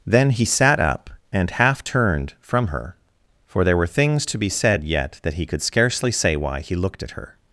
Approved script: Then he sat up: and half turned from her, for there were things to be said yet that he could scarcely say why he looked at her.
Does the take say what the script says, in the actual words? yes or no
yes